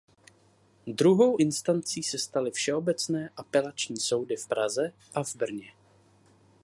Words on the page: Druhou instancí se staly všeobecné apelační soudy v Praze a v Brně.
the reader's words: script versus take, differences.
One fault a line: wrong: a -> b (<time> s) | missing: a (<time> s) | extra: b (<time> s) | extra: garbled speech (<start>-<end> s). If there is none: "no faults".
no faults